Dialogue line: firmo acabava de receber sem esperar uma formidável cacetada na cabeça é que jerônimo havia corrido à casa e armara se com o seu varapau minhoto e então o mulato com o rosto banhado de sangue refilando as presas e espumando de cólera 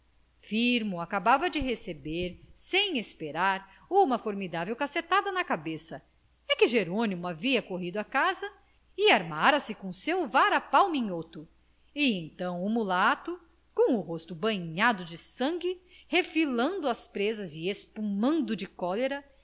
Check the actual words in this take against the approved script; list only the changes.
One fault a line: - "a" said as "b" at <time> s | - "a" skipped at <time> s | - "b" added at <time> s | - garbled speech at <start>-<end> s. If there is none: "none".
none